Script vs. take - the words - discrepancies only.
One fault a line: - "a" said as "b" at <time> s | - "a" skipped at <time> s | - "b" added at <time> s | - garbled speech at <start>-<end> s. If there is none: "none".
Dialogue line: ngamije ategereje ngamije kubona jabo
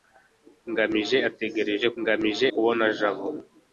none